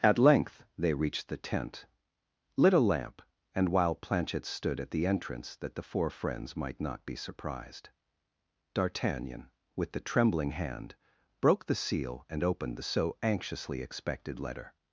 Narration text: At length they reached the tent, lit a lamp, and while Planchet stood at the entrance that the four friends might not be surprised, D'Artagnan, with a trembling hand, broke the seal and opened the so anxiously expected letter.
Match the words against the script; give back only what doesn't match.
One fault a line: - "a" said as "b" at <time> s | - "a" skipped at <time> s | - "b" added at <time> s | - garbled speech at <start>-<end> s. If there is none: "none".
- "a" said as "the" at 9.9 s